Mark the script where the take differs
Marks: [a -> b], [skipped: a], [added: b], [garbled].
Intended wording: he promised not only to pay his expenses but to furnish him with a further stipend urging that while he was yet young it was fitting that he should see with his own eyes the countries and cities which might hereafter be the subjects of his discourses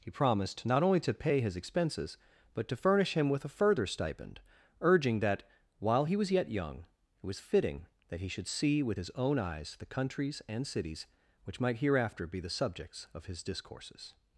he promised not only to pay his expenses but to furnish him with a further stipend urging that while he was yet young it was fitting that he should see with his own eyes the countries and cities which might hereafter be the subjects of his discourses